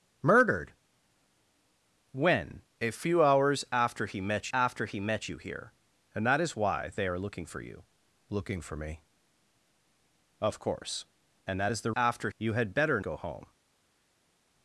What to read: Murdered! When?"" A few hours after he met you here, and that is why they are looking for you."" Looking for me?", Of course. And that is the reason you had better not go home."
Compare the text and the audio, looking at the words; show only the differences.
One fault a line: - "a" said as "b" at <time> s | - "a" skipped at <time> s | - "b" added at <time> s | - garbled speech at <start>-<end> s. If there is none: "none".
- "after he met" added at 4.5 s
- "reason" said as "after" at 11.9 s
- "not" skipped at 13.0 s